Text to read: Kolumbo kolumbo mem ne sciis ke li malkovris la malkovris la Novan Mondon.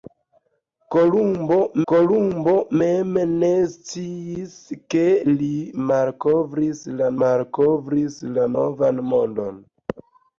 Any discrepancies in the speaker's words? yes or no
no